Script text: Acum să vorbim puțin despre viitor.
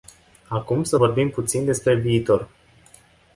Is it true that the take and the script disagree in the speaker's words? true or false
false